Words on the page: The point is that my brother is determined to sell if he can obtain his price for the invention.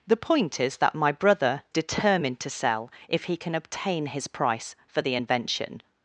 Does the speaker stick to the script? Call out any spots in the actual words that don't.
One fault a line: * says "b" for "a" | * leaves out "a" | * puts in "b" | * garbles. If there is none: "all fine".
* leaves out "is"